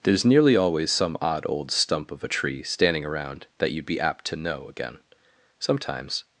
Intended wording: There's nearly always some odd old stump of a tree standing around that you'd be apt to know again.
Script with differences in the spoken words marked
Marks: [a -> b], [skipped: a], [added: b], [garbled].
There's nearly always some odd old stump of a tree standing around that you'd be apt to know again. [added: Sometimes]